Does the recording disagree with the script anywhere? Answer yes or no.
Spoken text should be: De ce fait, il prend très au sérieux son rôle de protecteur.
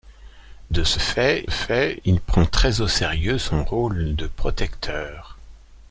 yes